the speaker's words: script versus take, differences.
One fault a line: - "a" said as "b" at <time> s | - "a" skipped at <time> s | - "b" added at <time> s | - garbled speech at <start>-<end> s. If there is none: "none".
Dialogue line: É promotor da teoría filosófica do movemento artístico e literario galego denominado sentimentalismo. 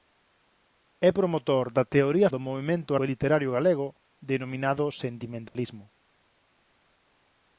- "filosófica" skipped at 2.3 s
- "artístico" skipped at 2.9 s